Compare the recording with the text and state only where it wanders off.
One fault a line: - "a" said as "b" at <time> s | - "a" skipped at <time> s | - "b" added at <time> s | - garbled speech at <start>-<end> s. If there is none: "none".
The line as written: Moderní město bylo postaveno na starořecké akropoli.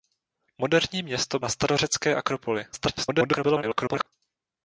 - "bylo postaveno" skipped at 1.4 s
- garbled speech at 2.7-4.1 s